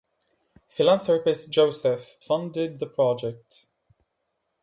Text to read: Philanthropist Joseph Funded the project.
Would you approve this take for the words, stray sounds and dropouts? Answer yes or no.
yes